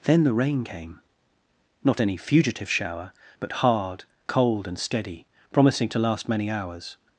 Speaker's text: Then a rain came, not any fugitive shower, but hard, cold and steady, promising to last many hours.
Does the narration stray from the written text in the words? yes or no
yes